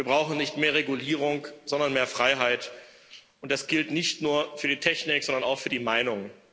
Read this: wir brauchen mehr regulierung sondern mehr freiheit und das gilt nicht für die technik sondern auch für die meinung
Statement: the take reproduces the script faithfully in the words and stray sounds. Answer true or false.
false